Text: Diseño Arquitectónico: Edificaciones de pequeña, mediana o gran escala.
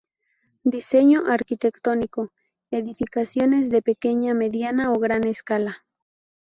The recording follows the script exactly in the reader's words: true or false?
true